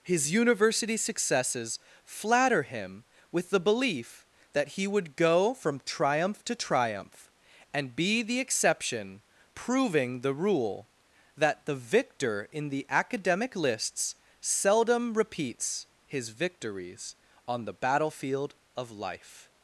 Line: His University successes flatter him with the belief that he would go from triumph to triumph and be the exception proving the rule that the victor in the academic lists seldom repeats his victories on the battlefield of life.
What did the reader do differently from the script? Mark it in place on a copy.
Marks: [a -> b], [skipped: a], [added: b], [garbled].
His University successes flatter him with the belief that he would go from triumph to triumph and be the exception proving the rule that the victor in the academic lists seldom repeats his victories on the battlefield of life.